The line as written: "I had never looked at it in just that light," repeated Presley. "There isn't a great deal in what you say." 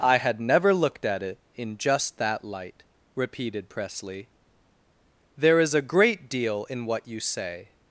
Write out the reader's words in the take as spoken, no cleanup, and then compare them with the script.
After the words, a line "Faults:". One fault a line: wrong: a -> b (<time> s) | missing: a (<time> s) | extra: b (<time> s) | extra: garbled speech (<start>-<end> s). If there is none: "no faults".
"I had never looked at it in just that light," repeated Presley. "There is a great deal in what you say."
Faults:
wrong: isn't -> is (5.6 s)